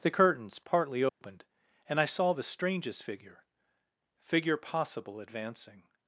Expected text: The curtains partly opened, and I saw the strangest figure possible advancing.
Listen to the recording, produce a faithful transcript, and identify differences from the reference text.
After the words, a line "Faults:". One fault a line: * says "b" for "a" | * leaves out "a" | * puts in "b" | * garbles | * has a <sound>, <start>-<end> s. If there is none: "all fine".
The curtains partly opened, and I saw the strangest figure figure possible advancing.
Faults:
* has a dropout, 1.1-1.2 s
* puts in "figure"